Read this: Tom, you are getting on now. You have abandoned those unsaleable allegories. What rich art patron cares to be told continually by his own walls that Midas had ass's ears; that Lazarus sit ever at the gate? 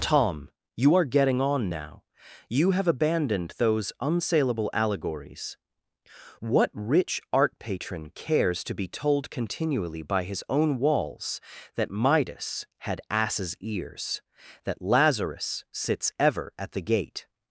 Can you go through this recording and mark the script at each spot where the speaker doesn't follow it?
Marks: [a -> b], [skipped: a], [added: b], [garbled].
Tom, you are getting on now. You have abandoned those unsaleable allegories. What rich art patron cares to be told continually by his own walls that Midas had ass's ears; that Lazarus [sit -> sits] ever at the gate?